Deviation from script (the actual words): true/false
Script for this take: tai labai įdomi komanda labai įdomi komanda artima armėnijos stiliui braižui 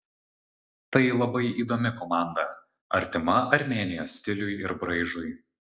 true